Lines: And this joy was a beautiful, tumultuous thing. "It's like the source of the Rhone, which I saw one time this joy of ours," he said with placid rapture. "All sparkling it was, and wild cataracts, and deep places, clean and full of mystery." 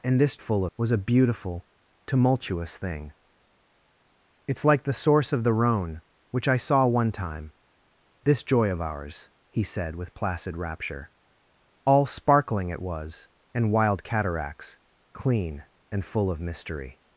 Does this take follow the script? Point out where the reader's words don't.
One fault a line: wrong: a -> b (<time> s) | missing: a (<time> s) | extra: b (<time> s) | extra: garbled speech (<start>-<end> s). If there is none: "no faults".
wrong: joy -> full (0.4 s)
missing: and deep places (14.8 s)